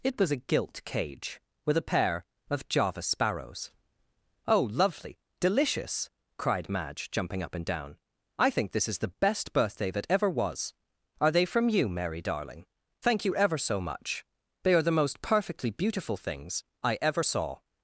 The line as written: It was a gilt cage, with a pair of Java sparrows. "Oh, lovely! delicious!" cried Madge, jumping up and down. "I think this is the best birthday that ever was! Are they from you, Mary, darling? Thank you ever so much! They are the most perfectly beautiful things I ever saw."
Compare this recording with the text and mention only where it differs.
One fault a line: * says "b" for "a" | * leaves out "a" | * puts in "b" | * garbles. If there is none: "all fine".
all fine